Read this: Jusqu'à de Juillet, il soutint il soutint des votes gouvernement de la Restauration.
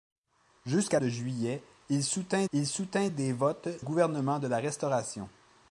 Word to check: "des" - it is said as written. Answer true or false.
true